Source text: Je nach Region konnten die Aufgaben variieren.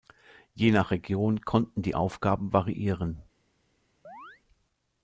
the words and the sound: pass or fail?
fail